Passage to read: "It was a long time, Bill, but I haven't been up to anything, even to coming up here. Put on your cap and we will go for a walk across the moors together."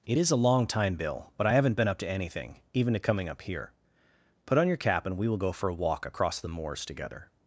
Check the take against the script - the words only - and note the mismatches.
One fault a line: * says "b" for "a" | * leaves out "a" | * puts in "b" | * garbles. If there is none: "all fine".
* says "is" for "was"